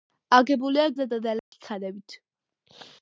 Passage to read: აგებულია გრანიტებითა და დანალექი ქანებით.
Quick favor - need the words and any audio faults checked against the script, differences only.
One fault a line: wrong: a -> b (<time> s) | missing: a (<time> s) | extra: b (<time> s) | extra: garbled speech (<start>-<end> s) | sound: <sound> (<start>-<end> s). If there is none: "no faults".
missing: გრანიტებითა (0.8 s)
sound: dropout (1.4-1.5 s)